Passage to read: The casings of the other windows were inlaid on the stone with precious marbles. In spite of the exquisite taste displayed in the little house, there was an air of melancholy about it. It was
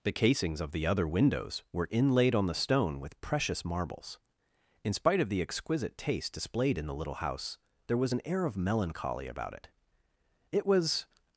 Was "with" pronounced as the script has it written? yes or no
yes